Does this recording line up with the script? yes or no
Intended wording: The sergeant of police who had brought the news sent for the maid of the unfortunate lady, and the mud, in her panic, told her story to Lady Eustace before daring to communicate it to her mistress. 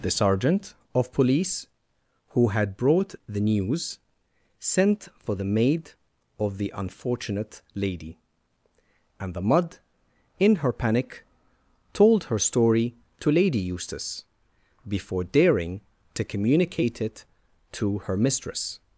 yes